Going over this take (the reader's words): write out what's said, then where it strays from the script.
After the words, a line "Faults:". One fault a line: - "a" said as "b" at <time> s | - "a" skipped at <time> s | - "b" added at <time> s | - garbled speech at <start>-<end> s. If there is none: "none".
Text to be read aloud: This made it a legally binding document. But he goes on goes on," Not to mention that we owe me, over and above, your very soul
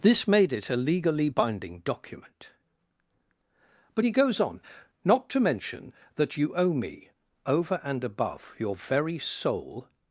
This made it a legally binding document. But he goes on," Not to mention that you owe me, over and above, your very soul
Faults:
- "goes on" skipped at 4.6 s
- "we" said as "you" at 6.4 s